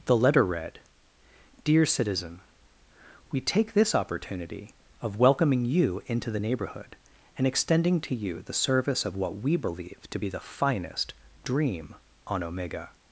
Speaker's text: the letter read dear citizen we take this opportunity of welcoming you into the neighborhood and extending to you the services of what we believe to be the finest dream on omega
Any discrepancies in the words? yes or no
yes